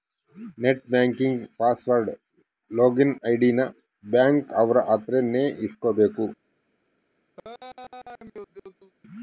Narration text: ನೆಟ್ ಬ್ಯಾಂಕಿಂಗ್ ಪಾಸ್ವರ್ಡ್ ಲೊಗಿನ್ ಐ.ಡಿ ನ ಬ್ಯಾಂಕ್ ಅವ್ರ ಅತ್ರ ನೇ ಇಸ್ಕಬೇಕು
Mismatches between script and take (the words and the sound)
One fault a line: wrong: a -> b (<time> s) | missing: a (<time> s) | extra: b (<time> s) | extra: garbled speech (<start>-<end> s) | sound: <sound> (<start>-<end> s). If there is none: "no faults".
sound: laugh (7.4-8.9 s)